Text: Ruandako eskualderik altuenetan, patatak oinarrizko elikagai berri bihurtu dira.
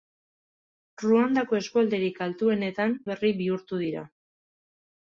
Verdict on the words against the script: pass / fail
fail